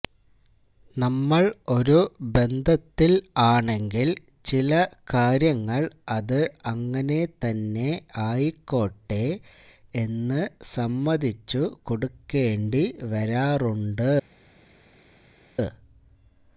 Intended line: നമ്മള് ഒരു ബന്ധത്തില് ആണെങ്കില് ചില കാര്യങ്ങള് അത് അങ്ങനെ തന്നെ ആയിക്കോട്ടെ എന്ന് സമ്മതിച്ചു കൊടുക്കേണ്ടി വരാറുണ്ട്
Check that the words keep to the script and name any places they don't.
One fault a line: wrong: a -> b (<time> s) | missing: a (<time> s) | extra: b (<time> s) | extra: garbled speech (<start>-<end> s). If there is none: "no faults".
no faults